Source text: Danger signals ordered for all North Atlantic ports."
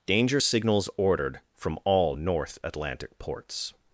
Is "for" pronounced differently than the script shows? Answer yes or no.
yes